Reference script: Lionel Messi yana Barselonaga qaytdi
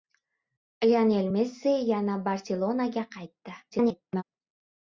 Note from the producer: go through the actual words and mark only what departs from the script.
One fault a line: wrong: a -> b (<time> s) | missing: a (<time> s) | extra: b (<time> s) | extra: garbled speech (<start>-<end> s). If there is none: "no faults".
extra: garbled speech (3.7-4.2 s)